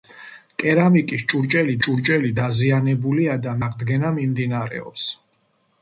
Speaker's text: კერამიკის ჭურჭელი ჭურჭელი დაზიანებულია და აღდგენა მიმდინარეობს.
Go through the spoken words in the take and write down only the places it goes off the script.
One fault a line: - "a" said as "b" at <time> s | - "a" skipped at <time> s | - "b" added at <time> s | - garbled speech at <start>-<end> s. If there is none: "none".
none